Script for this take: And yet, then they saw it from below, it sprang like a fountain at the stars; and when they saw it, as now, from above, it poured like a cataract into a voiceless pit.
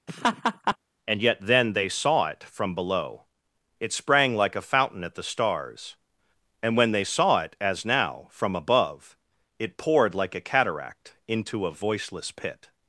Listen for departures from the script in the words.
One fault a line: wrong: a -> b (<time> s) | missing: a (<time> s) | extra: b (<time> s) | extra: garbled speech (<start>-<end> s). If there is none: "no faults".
no faults